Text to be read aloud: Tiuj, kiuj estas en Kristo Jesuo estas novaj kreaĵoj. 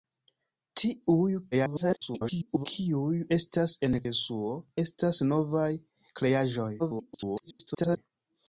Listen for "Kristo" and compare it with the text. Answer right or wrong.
wrong